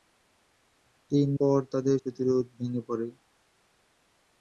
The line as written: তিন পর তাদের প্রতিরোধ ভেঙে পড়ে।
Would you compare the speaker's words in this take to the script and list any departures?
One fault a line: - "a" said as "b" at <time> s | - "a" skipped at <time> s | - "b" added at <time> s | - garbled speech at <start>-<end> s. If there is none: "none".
none